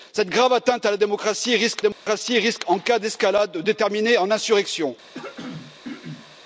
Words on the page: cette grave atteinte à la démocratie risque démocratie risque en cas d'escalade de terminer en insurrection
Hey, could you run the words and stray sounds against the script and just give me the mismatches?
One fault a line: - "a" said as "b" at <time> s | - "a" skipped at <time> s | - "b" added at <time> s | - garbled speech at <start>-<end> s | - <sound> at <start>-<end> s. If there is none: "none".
- dropout at 1.9-2.1 s
- throat clearing at 5.1-6.4 s